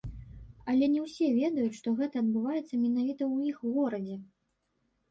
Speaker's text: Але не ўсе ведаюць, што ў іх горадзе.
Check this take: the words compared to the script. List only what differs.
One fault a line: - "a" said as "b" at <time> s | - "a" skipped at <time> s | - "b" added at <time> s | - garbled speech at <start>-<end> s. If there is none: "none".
- "гэта адбываецца менавіта" added at 2.0 s